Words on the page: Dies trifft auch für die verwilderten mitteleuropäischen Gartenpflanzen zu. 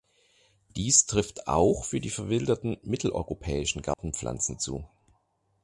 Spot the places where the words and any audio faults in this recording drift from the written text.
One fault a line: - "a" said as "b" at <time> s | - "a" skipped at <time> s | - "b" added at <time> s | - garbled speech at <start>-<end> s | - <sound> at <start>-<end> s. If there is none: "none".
- dropout at 3.9-4.0 s